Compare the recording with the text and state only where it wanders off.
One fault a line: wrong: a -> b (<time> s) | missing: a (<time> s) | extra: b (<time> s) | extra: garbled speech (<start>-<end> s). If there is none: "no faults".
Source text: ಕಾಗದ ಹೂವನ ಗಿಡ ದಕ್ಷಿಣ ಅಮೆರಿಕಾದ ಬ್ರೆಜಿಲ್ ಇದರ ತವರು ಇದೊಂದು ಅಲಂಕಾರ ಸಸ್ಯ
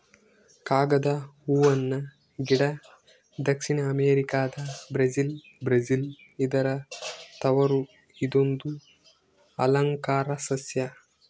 extra: ಬ್ರೆಜಿಲ್ (5.6 s)